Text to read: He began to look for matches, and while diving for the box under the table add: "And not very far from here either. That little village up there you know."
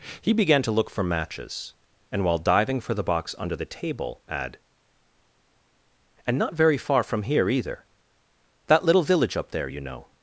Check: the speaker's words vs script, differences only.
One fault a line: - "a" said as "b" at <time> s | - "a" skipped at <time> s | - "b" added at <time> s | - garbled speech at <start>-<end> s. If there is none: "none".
none